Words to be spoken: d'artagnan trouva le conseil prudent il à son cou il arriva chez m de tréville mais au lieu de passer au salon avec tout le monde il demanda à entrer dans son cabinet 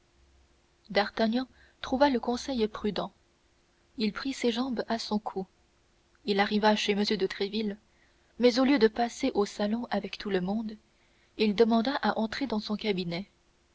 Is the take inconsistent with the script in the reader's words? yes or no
yes